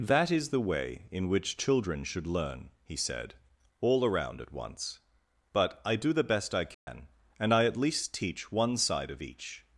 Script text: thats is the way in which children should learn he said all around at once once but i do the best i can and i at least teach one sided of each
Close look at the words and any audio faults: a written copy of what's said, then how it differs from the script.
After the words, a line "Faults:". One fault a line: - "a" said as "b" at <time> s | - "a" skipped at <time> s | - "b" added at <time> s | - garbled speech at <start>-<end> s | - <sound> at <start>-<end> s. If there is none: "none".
that is the way in which children should learn he said all around at once but i do the best i can and i at least teach one side of each
Faults:
- "thats" said as "that" at 0.0 s
- "once" skipped at 5.0 s
- dropout at 6.7-6.9 s
- "sided" said as "side" at 8.8 s